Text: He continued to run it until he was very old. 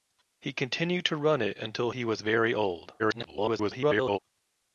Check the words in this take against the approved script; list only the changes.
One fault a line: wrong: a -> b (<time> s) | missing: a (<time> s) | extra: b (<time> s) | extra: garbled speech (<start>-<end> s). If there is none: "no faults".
extra: garbled speech (3.0-4.2 s)